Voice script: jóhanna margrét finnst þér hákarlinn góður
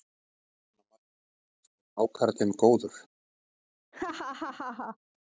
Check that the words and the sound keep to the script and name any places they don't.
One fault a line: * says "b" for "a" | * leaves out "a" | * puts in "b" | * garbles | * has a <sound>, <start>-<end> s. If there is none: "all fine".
* has a laugh, 3.9-5.0 s